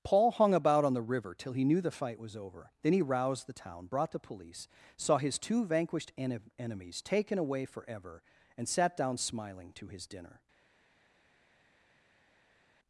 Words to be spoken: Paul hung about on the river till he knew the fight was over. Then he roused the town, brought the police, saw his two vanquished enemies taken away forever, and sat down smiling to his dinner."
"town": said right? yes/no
yes